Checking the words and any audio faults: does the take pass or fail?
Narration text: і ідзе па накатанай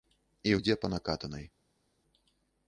pass